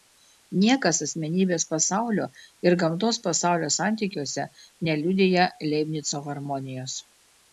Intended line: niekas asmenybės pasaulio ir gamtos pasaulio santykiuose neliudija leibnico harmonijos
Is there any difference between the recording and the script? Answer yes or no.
no